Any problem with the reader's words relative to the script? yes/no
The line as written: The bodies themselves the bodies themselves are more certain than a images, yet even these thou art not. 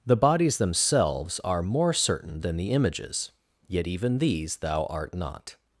yes